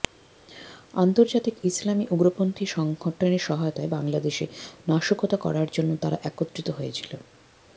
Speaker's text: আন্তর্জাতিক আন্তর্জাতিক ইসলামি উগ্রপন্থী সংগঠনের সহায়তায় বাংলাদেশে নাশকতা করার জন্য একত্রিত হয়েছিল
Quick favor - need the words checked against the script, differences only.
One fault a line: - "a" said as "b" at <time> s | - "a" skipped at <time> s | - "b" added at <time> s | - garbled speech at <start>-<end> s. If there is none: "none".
- "আন্তর্জাতিক" skipped at 1.6 s
- "তারা" added at 6.0 s